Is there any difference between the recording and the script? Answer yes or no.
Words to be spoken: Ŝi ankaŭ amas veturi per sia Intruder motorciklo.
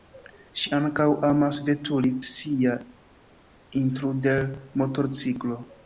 yes